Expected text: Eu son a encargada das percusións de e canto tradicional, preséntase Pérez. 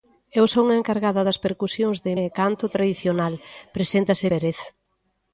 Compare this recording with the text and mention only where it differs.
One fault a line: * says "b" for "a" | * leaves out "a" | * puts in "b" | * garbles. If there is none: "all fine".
all fine